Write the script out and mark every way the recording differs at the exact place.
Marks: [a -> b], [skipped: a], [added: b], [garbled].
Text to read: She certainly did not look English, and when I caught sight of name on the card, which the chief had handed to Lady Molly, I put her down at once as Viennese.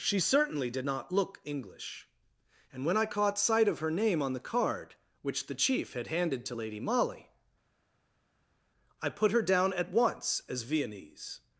She certainly did not look English, and when I caught sight of [added: her] name on the card, which the chief had handed to Lady Molly, I put her down at once as Viennese.